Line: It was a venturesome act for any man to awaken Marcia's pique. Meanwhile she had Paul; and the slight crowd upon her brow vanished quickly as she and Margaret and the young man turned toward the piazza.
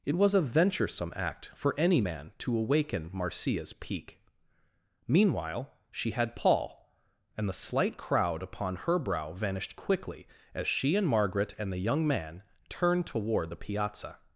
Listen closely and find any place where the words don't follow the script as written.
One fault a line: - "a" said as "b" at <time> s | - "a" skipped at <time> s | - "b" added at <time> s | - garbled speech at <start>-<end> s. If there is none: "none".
none